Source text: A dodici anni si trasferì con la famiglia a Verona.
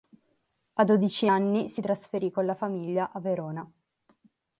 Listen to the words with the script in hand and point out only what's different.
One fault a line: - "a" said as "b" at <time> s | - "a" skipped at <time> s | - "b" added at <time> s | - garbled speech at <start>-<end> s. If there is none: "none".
none